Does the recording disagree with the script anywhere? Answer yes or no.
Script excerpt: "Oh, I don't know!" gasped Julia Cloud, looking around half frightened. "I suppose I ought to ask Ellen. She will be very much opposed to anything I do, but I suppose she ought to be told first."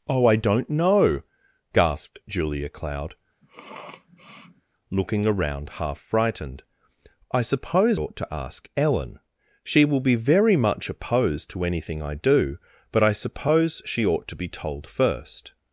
yes